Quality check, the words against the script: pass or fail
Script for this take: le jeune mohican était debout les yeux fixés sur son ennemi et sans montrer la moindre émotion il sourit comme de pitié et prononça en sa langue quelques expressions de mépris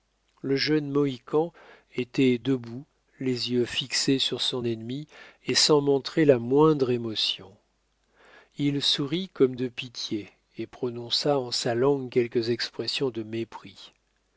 pass